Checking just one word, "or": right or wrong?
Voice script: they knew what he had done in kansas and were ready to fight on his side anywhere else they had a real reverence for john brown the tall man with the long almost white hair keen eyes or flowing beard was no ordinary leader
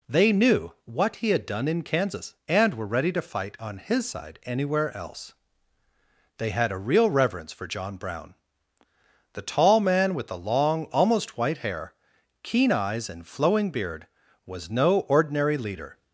wrong